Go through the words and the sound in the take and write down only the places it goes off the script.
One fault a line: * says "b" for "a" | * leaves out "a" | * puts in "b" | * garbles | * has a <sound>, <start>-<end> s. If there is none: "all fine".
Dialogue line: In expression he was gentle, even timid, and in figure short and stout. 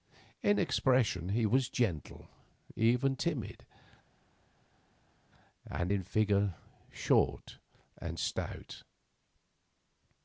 all fine